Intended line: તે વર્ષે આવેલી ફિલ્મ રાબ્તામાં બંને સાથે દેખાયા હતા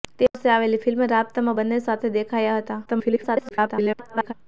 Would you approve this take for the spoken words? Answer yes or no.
no